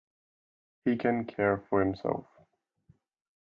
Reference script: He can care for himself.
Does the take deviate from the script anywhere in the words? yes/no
no